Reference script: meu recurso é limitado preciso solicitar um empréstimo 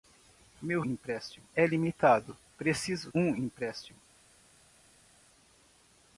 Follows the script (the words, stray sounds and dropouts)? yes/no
no